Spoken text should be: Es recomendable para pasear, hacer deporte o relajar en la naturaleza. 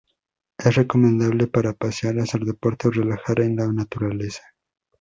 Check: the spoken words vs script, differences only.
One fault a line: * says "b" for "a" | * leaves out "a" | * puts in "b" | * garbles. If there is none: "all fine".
all fine